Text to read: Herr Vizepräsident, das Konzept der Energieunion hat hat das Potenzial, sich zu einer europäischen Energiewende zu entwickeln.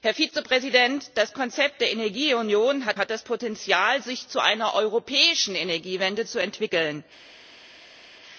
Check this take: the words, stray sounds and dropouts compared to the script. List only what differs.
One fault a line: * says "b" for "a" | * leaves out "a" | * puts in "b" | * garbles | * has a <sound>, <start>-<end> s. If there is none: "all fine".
all fine